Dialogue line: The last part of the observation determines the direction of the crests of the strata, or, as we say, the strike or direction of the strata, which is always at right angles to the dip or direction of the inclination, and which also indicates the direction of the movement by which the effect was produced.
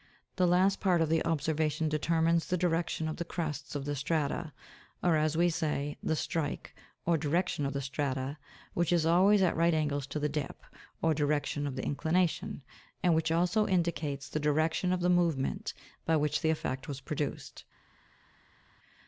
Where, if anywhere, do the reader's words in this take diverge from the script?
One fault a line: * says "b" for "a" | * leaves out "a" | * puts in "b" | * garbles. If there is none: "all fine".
all fine